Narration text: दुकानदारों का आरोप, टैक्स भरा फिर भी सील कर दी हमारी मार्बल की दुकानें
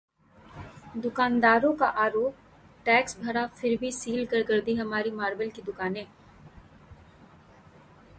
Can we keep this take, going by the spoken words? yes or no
no